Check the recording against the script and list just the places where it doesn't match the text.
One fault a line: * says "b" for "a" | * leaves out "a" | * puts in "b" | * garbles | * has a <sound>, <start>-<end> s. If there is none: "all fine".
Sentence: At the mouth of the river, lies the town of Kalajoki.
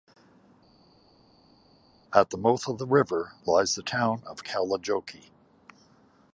all fine